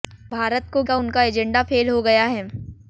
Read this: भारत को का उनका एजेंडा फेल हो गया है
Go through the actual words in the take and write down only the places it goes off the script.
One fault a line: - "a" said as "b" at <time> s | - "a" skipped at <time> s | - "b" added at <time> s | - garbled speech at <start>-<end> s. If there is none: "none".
none